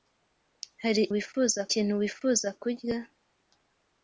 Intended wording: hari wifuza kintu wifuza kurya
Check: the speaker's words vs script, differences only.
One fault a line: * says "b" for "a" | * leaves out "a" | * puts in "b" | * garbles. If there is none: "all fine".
all fine